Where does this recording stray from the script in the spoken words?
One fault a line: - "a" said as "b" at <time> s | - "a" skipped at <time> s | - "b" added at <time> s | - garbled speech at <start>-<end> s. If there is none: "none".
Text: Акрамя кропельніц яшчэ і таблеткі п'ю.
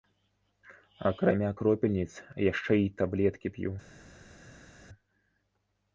none